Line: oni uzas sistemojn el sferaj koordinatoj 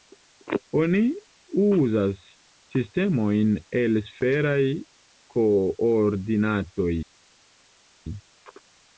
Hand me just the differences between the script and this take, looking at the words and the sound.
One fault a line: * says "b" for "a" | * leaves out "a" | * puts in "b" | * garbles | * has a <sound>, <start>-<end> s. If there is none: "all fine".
all fine